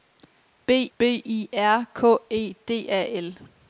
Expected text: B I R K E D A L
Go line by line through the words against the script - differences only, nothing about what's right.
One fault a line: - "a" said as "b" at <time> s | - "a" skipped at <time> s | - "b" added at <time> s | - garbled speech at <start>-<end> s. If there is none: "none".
- "b" added at 1.0 s